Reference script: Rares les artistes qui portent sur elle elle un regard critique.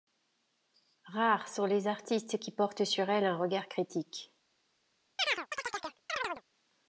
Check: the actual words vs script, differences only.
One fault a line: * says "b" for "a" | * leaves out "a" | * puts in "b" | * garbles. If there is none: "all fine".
* puts in "sont"
* leaves out "elle"